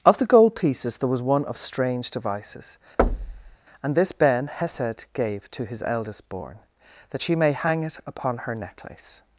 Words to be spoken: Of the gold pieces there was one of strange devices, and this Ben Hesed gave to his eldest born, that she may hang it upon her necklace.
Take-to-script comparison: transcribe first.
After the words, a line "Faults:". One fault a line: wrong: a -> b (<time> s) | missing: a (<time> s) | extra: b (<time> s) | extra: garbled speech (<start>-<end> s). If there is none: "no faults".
Of the gold pieces there was one of strange devices, and this Ben Hesed gave to his eldest born, that she may hang it upon her necklace.
Faults:
no faults